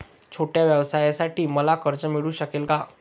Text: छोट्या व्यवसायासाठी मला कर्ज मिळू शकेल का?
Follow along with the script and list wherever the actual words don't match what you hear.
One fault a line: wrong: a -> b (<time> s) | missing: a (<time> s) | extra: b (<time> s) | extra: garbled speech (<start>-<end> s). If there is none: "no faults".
no faults